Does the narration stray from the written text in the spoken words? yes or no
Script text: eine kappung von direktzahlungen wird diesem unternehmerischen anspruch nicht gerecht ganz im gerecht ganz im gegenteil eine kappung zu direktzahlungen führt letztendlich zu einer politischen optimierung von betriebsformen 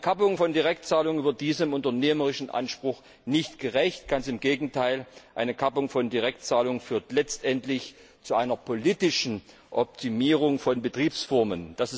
yes